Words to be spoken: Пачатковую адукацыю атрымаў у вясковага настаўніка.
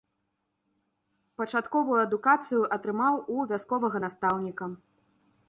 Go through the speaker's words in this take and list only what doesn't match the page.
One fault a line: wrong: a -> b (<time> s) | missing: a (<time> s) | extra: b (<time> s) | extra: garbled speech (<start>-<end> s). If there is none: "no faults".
no faults